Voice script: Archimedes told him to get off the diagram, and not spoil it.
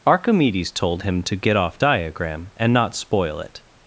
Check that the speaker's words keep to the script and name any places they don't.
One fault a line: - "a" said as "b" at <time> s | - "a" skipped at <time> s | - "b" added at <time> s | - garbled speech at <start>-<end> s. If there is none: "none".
- "the" skipped at 1.8 s